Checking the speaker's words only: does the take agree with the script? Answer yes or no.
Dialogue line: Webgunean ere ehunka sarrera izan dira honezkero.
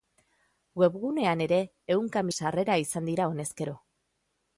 yes